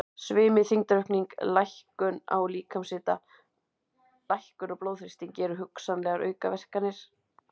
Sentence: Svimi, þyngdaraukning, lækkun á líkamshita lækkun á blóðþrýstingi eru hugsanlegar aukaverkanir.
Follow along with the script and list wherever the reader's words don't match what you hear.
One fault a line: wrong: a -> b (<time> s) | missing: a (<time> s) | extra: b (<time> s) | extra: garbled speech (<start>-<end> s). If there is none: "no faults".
no faults